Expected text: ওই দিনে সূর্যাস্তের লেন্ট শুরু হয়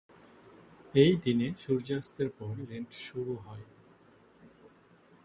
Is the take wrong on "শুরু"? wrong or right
right